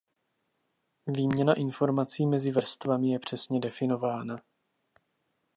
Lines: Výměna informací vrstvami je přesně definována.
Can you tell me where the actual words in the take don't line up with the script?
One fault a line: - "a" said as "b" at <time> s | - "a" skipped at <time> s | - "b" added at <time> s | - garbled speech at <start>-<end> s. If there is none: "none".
- "mezi" added at 2.2 s